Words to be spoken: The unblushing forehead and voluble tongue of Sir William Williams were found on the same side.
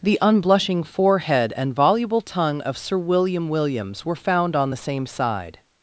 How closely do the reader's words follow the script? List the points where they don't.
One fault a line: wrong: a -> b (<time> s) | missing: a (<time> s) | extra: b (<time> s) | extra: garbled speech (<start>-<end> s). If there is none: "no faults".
no faults